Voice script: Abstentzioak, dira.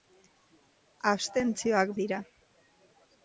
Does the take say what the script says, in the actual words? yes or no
yes